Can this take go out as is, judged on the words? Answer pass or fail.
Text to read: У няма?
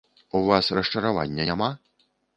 fail